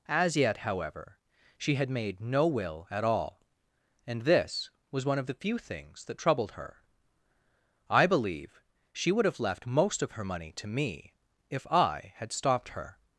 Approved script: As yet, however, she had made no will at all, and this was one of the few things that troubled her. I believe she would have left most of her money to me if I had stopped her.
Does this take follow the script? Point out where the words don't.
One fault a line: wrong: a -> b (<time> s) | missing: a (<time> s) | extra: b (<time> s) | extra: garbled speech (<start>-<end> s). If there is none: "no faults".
no faults